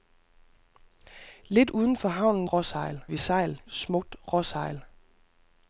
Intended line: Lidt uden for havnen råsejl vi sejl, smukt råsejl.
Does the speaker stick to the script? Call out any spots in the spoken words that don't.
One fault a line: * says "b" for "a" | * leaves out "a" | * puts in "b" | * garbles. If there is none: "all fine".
all fine